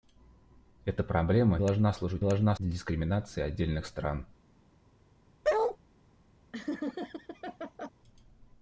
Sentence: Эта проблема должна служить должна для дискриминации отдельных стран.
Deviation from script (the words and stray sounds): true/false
true